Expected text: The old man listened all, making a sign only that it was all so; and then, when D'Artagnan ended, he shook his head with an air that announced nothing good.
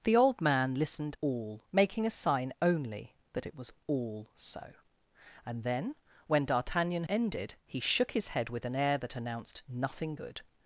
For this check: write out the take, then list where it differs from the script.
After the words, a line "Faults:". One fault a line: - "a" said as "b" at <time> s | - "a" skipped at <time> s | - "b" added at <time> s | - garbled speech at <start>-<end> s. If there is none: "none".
The old man listened all, making a sign only that it was all so; and then, when D'Artagnan ended, he shook his head with an air that announced nothing good.
Faults:
none